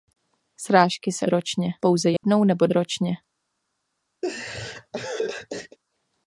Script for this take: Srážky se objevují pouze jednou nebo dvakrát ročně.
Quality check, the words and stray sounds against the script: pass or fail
fail